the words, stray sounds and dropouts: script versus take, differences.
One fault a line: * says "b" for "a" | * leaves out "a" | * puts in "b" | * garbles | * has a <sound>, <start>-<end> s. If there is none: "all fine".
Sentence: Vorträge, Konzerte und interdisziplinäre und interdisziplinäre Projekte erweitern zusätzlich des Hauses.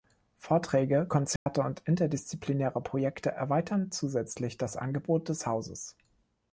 * has a dropout, 1.4-1.5 s
* leaves out "und interdisziplinäre"
* puts in "das Angebot"